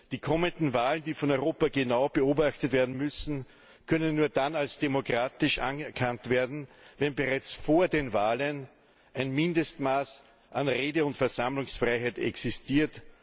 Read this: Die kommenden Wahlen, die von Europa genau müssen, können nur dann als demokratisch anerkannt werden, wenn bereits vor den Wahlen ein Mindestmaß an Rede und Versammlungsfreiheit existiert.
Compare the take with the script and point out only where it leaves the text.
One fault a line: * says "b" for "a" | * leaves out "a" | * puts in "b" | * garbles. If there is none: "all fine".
* puts in "beobachtet werden"